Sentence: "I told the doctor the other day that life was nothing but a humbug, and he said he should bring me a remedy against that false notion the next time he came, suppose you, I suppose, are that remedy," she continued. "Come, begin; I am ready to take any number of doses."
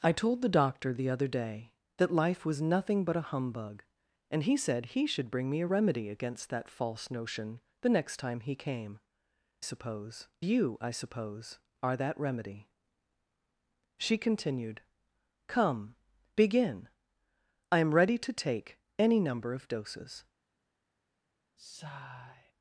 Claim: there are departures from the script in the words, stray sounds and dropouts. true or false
true